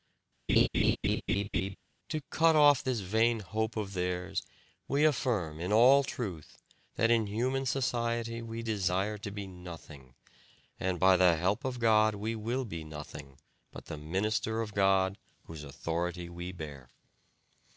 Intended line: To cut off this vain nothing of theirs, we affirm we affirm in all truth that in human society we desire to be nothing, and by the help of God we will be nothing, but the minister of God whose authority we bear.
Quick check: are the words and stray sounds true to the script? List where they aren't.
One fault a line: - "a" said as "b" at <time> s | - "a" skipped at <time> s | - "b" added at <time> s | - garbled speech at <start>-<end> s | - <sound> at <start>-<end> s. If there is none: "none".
- laugh at 0.5-1.8 s
- "nothing" said as "hope" at 3.4 s
- "we affirm" skipped at 5.6 s